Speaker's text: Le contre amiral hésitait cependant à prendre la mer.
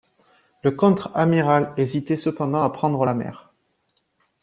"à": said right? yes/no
yes